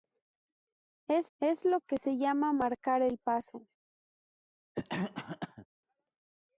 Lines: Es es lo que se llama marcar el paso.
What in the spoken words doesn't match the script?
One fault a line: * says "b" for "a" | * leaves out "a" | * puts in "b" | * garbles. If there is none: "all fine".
all fine